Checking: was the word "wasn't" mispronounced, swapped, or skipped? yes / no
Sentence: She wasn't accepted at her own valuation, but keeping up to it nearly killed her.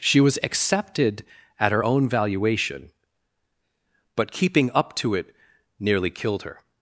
yes